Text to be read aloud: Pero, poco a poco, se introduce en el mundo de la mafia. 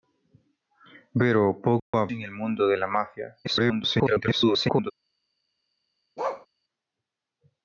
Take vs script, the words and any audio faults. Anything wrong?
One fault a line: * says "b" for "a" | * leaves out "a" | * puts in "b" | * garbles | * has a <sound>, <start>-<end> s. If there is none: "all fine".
* has a dropout, 1.8-1.9 s
* leaves out "poco se introduce"
* garbles
* has a bark, 6.2-6.5 s